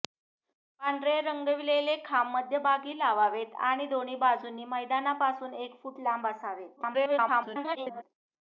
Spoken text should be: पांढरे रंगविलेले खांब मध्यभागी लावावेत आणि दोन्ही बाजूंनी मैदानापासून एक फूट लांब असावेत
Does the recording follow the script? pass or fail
fail